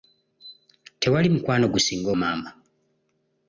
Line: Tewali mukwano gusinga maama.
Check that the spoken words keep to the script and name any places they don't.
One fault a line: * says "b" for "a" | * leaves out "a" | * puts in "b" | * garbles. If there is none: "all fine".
all fine